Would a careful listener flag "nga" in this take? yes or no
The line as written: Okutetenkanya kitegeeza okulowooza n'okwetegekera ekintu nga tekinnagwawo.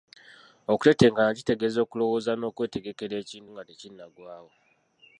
no